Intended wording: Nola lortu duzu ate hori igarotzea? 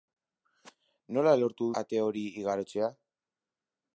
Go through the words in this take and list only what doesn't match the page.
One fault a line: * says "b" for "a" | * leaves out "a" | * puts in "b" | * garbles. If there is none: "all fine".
* leaves out "duzu"